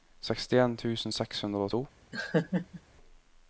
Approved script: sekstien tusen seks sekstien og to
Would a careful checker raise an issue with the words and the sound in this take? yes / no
yes